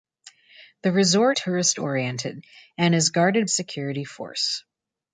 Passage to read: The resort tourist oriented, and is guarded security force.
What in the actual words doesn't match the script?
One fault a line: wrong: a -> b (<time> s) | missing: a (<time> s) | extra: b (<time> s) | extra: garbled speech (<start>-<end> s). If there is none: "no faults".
no faults